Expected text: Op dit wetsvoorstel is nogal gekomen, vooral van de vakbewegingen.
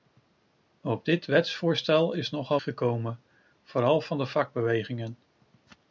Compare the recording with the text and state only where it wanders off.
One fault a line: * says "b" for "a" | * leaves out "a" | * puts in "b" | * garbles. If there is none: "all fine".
all fine